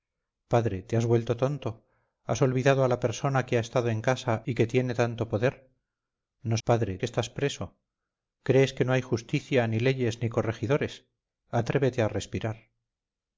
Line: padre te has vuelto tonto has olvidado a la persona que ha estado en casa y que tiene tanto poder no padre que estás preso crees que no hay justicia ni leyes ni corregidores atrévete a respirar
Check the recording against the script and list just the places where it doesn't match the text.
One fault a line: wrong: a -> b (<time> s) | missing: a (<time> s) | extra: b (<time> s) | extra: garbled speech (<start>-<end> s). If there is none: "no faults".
no faults